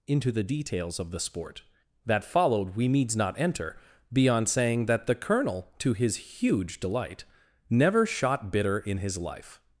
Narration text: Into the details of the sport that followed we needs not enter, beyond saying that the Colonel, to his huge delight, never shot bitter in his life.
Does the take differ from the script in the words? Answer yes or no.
no